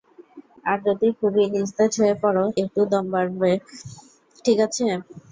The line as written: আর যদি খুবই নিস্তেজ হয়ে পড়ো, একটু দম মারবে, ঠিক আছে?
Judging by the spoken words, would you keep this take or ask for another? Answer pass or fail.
pass